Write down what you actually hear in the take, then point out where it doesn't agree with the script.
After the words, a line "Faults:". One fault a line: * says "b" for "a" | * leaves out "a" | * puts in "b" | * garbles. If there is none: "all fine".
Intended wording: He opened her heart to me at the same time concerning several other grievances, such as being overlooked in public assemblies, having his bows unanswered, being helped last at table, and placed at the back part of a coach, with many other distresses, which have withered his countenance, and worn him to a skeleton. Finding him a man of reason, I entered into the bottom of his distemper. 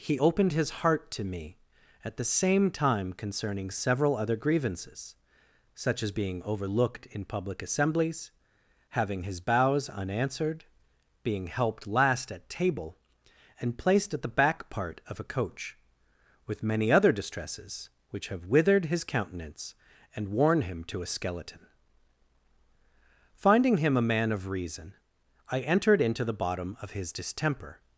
He opened his heart to me at the same time concerning several other grievances, such as being overlooked in public assemblies, having his bows unanswered, being helped last at table, and placed at the back part of a coach, with many other distresses, which have withered his countenance, and worn him to a skeleton. Finding him a man of reason, I entered into the bottom of his distemper.
Faults:
* says "his" for "her"